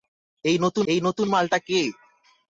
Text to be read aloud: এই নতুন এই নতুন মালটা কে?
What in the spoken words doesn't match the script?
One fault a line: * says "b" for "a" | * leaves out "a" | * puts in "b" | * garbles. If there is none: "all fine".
all fine